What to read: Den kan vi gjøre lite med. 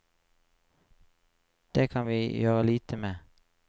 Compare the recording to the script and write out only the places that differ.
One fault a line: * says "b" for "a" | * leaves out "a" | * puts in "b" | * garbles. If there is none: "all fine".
* says "Det" for "Den"